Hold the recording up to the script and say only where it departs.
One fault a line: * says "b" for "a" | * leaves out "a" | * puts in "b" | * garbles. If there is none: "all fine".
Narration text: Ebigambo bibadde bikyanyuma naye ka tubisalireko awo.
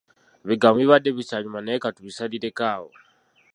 all fine